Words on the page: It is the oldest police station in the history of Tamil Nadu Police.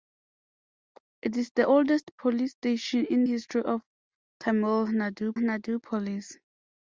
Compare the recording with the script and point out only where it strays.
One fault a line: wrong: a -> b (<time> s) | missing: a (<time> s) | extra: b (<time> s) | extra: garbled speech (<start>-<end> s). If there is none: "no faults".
missing: the (3.2 s)
extra: Nadu (5.4 s)